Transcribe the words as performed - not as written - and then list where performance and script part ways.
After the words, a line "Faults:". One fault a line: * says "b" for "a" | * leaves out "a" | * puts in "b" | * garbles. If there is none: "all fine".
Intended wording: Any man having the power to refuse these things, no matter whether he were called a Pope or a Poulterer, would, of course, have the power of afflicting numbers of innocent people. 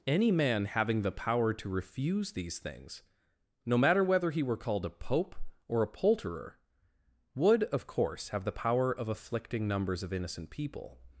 Any man having the power to refuse these things, no matter whether he were called a Pope or a Poulterer, would, of course, have the power of afflicting numbers of innocent people.
Faults:
all fine